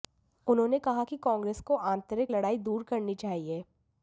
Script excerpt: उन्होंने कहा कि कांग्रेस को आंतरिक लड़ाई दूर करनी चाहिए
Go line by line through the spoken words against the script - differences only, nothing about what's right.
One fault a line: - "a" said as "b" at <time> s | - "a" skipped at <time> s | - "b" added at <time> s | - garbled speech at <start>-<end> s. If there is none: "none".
none